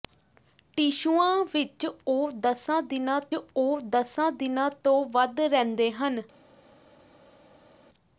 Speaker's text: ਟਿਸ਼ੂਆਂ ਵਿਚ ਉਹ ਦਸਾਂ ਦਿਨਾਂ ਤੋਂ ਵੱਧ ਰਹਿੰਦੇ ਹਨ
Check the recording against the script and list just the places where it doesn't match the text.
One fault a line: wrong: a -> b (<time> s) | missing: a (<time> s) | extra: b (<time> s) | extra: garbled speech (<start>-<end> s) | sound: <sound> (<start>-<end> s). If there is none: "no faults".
extra: ਉਹ ਦਸਾਂ ਦਿਨਾਂ (3.3 s)